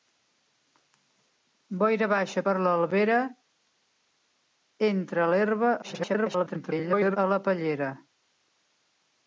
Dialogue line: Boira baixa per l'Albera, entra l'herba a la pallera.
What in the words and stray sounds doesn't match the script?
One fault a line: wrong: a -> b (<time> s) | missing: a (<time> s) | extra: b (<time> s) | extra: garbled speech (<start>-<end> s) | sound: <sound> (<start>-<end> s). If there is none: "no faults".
extra: garbled speech (5.8-7.2 s)